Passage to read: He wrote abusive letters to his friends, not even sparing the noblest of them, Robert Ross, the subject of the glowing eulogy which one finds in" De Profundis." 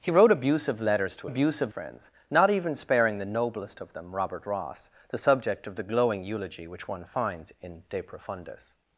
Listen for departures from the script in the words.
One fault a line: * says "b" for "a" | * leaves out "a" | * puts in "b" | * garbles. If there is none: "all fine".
* says "abusive" for "his"